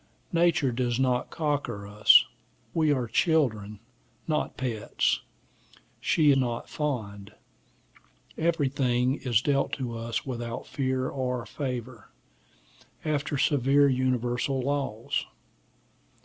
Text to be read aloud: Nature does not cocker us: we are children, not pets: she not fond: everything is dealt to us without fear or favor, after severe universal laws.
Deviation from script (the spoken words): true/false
false